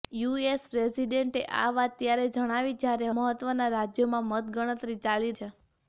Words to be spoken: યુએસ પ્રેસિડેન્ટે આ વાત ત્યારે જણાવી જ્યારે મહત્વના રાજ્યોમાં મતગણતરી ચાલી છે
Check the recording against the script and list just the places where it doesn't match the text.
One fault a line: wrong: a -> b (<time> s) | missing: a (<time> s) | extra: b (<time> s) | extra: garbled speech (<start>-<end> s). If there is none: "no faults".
no faults